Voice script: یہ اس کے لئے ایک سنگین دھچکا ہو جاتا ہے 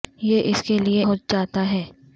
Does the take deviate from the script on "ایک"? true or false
true